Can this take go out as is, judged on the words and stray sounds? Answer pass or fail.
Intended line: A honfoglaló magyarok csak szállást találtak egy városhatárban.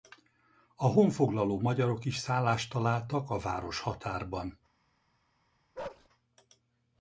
fail